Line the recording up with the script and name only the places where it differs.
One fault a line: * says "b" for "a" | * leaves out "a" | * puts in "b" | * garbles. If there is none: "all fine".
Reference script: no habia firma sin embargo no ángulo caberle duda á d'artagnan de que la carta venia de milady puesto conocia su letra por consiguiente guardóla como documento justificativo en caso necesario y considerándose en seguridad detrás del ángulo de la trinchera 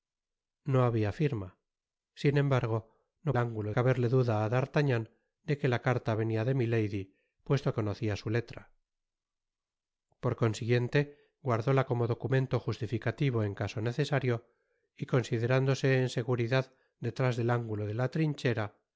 all fine